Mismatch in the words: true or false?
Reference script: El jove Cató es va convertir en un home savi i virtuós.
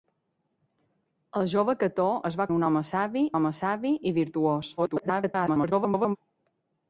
true